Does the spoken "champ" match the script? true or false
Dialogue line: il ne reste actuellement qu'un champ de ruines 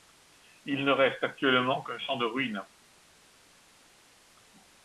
true